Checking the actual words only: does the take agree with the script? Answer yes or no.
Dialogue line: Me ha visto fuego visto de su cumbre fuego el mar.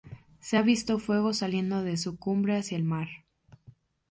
no